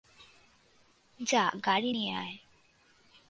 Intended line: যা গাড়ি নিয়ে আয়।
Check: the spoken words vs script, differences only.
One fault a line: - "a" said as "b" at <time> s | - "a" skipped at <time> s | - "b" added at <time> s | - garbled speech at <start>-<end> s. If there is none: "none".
none